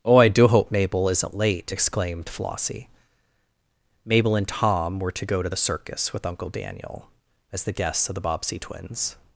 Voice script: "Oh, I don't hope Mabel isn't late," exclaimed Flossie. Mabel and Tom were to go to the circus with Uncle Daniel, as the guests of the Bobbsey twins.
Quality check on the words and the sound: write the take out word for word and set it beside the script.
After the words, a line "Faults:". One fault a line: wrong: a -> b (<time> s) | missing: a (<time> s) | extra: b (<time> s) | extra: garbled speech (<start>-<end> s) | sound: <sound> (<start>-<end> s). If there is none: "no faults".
"Oh, I do hope Mabel isn't late," exclaimed Flossie. Mabel and Tom were to go to the circus with Uncle Daniel, as the guests of the Bobbsey twins.
Faults:
wrong: don't -> do (0.3 s)